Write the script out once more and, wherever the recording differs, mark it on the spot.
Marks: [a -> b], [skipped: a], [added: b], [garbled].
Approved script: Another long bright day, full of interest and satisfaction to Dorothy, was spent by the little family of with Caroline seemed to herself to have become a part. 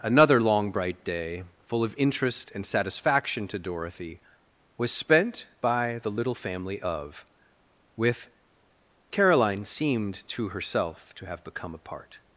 Another long bright day, full of interest and satisfaction to Dorothy, was spent by the little family of with Caroline seemed to herself to have become a part.